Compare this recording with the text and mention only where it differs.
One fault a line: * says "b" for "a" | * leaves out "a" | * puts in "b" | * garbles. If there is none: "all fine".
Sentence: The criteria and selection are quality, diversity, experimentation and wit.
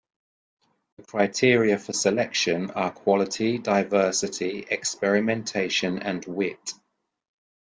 * says "for" for "and"